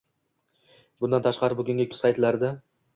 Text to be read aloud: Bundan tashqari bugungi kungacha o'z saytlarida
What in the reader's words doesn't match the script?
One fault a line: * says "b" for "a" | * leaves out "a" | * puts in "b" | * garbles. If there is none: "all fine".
* leaves out "kungacha"